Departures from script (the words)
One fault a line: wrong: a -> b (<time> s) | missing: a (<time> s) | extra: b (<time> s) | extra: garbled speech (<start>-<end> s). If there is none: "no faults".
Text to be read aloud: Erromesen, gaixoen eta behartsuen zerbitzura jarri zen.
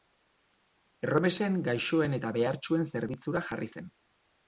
no faults